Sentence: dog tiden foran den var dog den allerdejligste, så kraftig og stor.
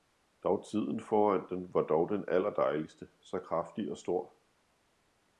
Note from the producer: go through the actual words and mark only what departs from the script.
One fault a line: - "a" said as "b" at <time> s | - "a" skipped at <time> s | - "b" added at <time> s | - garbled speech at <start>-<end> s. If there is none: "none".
none